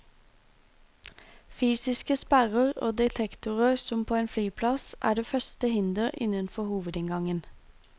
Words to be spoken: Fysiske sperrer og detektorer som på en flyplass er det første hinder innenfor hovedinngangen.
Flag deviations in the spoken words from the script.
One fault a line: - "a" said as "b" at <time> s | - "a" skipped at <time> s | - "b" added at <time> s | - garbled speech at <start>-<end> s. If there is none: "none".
none